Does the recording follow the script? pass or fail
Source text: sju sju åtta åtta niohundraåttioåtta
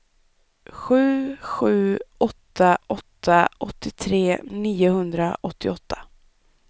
fail